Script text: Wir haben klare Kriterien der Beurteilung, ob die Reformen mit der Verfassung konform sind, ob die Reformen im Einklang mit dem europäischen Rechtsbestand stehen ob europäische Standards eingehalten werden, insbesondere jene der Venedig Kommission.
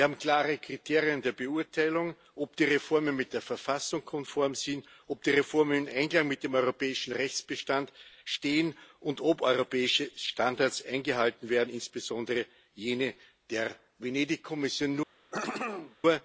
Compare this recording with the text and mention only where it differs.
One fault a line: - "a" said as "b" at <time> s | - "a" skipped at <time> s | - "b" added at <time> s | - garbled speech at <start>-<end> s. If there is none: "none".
- "und" added at 9.0 s